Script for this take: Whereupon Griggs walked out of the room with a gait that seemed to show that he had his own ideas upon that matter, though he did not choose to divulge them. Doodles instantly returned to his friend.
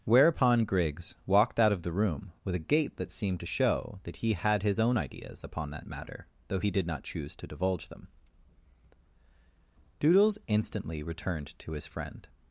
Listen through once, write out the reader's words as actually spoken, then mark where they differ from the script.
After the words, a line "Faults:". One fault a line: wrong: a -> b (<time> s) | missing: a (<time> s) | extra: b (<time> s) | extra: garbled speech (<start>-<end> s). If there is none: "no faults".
Whereupon Griggs walked out of the room with a gait that seemed to show that he had his own ideas upon that matter, though he did not choose to divulge them. Doodles instantly returned to his friend.
Faults:
no faults